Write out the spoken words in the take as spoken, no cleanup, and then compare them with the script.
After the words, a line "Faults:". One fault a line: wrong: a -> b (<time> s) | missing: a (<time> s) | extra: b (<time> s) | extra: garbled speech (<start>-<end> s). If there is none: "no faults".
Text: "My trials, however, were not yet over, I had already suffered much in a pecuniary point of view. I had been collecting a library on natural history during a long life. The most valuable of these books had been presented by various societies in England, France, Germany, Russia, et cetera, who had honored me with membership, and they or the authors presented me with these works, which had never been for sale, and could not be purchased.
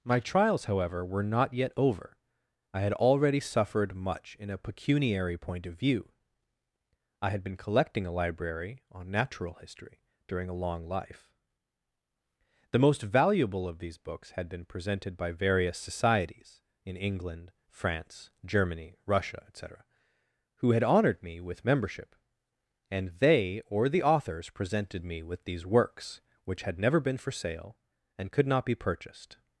"My trials, however, were not yet over, I had already suffered much in a pecuniary point of view. I had been collecting a library on natural history during a long life. The most valuable of these books had been presented by various societies in England, France, Germany, Russia, et cetera, who had honored me with membership, and they or the authors presented me with these works, which had never been for sale, and could not be purchased.
Faults:
no faults